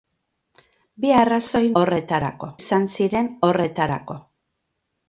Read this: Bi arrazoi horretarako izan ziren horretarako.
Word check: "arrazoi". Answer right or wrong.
right